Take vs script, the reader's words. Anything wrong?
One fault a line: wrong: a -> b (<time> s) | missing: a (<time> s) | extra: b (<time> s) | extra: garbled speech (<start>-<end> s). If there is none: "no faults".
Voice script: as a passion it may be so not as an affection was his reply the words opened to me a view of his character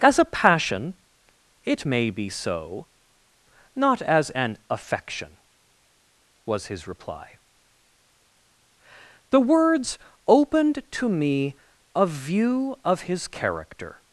no faults